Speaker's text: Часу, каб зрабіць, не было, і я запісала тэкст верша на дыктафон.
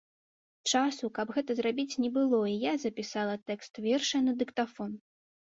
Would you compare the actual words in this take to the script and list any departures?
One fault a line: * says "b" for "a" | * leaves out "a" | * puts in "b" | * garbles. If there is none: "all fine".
* puts in "гэта"